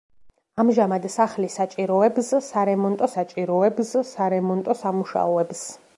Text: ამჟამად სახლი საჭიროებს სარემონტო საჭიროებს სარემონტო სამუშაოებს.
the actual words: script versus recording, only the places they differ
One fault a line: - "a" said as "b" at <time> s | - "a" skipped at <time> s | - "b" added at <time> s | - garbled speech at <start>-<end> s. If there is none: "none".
none